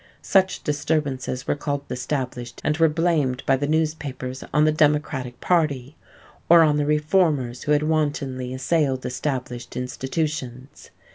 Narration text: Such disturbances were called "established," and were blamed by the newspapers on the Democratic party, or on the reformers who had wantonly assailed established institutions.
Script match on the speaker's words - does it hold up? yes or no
yes